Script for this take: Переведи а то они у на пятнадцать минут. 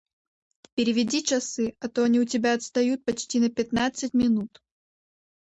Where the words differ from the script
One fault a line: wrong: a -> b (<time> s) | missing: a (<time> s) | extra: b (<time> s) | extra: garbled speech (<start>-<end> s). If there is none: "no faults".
extra: часы (1.2 s)
extra: тебя отстают почти (2.2 s)